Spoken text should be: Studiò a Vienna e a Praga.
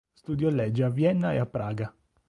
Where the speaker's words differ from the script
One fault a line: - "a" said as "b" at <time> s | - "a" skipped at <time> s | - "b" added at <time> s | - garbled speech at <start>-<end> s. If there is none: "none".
- "legge" added at 0.5 s